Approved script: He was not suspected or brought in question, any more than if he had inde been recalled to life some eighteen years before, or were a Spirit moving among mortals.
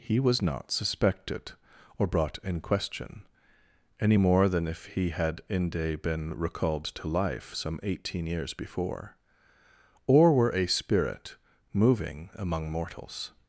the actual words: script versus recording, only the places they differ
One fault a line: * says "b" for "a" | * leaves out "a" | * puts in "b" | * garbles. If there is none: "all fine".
all fine